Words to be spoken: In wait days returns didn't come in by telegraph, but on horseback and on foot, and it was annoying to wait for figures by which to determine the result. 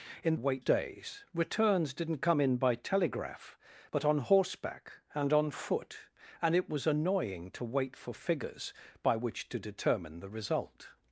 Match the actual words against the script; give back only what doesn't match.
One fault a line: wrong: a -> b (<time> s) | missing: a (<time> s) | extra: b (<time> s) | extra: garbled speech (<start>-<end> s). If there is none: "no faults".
no faults